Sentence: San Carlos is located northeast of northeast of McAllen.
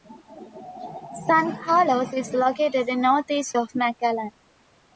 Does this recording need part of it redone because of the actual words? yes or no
yes